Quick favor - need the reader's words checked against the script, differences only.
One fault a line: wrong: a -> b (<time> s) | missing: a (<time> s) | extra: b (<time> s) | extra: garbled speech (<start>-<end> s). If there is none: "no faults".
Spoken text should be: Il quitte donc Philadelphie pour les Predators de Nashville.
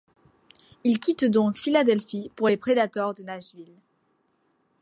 no faults